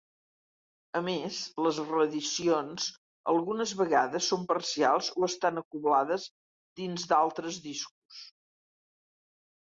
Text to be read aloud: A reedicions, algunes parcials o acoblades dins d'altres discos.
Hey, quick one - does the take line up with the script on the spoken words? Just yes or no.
no